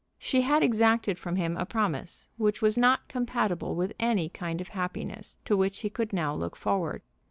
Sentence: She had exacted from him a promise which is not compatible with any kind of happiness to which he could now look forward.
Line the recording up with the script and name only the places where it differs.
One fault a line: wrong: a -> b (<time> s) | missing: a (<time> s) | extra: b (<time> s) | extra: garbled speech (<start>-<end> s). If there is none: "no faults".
wrong: is -> was (2.6 s)